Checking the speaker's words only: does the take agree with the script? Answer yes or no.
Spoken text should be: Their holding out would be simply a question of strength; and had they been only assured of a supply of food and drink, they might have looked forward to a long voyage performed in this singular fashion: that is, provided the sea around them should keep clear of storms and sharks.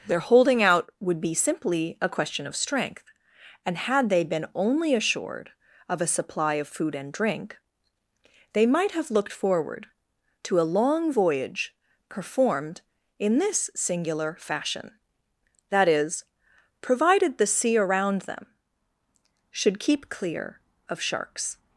no